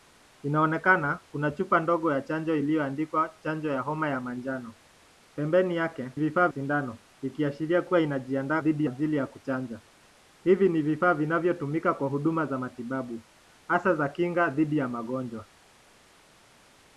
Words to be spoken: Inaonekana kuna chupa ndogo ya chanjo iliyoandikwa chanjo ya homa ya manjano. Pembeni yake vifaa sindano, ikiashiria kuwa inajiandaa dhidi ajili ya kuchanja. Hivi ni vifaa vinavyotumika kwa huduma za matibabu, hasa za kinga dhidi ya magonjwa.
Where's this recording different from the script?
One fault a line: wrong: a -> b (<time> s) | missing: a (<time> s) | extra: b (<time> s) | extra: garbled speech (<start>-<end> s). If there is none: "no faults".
no faults